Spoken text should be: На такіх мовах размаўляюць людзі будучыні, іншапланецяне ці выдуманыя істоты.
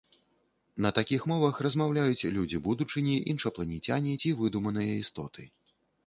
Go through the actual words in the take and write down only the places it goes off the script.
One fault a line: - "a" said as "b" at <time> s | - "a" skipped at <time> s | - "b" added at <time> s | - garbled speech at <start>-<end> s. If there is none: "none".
none